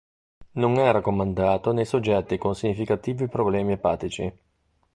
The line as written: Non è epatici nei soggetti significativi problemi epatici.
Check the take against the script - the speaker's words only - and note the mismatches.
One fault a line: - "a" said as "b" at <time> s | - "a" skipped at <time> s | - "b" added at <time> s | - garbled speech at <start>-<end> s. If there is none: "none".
- "epatici" said as "raccomandato" at 0.9 s
- "con" added at 2.4 s